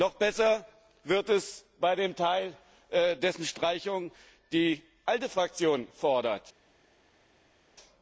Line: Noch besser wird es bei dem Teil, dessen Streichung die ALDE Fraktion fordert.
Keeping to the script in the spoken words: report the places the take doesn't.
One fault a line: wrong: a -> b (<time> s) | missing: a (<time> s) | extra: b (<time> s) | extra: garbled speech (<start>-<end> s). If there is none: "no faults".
no faults